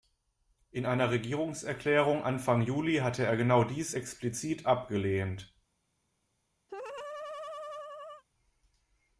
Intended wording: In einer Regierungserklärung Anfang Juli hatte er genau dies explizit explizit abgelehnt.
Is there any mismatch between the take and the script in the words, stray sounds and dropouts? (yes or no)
yes